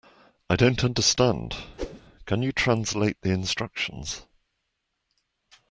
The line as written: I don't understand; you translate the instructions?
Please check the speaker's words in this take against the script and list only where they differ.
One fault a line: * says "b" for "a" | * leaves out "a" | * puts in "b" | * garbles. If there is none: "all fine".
* puts in "can"